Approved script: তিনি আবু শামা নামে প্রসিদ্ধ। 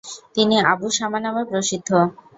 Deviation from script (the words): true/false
false